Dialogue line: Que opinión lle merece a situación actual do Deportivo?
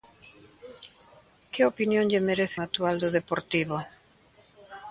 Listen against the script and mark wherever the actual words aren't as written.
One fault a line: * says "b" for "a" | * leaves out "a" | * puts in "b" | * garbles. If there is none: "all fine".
* leaves out "a situación"